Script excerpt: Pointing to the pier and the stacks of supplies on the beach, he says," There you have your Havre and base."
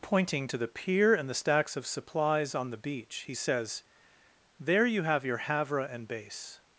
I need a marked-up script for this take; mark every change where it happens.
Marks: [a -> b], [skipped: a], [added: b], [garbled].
Pointing to the pier and the stacks of supplies on the beach, he says," There you have your Havre and base."